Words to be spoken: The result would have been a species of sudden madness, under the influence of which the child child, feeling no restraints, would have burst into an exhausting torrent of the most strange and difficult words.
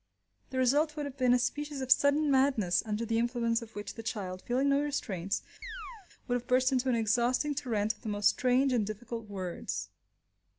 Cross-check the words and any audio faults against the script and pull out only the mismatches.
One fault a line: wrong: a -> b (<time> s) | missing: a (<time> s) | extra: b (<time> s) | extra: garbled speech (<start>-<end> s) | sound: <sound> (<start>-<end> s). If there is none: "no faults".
missing: child (4.4 s)
sound: chirp (5.6-6.1 s)